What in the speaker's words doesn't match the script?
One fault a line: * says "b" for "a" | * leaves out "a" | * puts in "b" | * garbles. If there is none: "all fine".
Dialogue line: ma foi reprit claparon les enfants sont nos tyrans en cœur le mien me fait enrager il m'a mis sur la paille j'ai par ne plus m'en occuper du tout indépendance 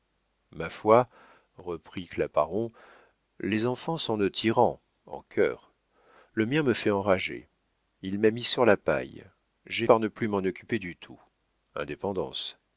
all fine